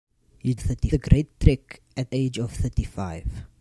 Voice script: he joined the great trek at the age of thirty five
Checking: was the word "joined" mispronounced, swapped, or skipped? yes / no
yes